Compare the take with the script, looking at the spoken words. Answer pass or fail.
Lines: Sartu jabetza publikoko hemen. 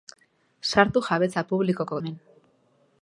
pass